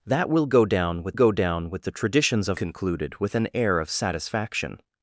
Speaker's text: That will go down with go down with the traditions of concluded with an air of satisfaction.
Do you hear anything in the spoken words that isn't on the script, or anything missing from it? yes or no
no